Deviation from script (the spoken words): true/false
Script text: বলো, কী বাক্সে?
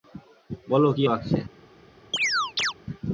false